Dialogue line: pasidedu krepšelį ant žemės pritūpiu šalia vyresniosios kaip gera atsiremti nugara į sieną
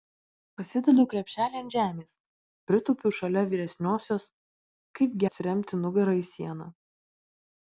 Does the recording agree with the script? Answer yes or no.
no